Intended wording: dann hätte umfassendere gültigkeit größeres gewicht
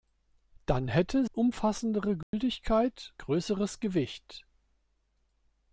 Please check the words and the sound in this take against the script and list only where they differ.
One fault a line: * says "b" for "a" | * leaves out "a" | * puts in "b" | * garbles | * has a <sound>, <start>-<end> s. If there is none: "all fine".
* has a dropout, 2.2-2.3 s